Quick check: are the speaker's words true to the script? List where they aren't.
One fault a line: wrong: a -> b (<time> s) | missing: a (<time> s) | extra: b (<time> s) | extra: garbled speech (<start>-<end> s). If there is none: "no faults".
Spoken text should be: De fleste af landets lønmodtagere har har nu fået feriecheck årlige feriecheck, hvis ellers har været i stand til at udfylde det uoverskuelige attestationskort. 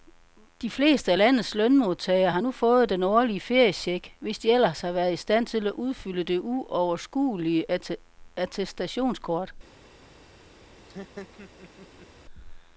missing: har (2.4 s)
wrong: feriecheck -> den (2.9 s)
extra: de (4.4 s)